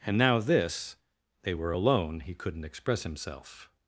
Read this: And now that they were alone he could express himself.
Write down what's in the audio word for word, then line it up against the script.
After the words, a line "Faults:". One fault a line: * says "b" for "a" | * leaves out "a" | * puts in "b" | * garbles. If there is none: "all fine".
And now this they were alone he couldn't express himself.
Faults:
* says "this" for "that"
* says "couldn't" for "could"